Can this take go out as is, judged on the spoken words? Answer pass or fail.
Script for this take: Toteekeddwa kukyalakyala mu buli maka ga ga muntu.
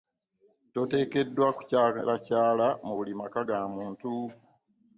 fail